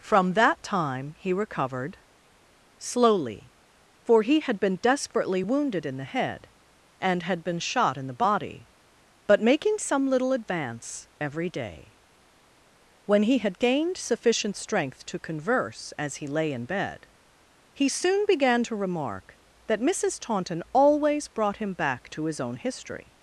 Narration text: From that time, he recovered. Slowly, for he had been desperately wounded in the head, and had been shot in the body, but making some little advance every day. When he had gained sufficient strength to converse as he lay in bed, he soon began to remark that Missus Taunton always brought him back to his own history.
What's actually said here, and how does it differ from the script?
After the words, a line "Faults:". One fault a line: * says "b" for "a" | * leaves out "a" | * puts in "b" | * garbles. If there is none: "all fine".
From that time, he recovered. Slowly, for he had been desperately wounded in the head, and had been shot in the body, but making some little advance every day. When he had gained sufficient strength to converse as he lay in bed, he soon began to remark that Missus Taunton always brought him back to his own history.
Faults:
all fine